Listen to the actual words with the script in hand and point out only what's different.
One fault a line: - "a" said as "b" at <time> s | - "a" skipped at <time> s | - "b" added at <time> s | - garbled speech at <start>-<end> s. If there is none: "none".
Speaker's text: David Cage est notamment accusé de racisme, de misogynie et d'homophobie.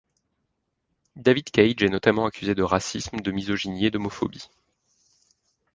none